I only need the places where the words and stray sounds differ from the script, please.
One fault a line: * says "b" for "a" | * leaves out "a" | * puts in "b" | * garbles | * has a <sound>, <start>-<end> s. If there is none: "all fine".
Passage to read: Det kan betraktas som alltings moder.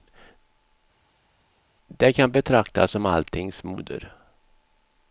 all fine